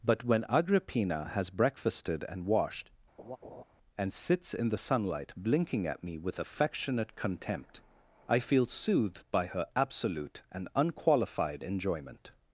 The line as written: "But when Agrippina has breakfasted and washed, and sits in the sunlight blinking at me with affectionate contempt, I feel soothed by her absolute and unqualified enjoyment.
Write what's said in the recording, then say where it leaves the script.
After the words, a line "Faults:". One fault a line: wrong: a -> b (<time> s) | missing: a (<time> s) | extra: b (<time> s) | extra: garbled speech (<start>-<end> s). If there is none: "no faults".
"But when Agrippina has breakfasted and washed, and sits in the sunlight blinking at me with affectionate contempt, I feel soothed by her absolute and unqualified enjoyment.
Faults:
no faults